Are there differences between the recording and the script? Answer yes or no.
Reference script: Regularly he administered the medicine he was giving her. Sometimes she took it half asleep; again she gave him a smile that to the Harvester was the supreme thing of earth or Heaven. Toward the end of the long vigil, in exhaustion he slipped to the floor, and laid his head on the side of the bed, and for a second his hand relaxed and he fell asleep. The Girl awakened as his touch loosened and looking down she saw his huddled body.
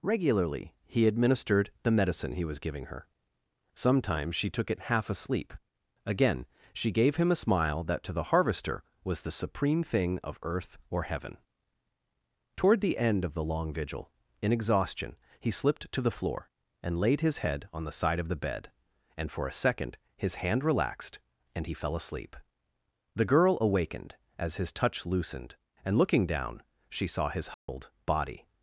no